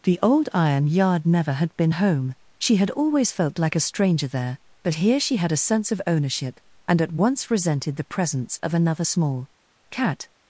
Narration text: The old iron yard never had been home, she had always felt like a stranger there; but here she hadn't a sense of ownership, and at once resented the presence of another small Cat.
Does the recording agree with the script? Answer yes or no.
no